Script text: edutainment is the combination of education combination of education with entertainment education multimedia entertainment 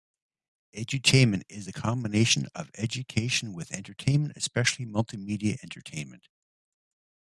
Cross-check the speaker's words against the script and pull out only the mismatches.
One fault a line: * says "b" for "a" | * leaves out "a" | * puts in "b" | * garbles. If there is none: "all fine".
* leaves out "combination of education"
* says "especially" for "education"